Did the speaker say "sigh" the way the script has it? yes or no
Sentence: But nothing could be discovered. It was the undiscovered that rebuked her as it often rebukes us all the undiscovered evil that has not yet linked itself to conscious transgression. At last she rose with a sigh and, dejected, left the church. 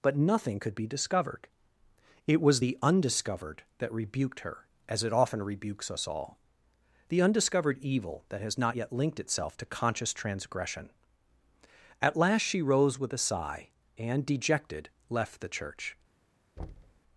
yes